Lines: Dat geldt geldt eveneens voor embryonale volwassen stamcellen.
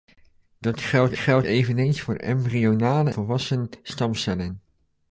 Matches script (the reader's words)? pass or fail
pass